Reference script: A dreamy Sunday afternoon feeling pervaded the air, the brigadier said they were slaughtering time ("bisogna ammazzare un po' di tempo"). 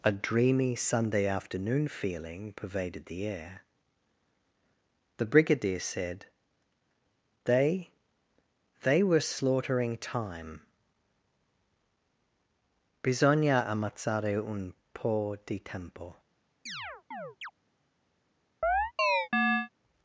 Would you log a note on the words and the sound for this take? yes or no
yes